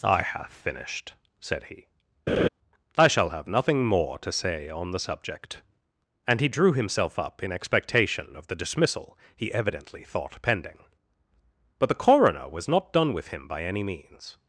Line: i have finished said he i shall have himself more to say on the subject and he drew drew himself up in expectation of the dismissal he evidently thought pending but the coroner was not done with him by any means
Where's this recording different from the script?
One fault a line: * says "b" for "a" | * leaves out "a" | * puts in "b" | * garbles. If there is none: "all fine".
* says "nothing" for "himself"
* leaves out "drew"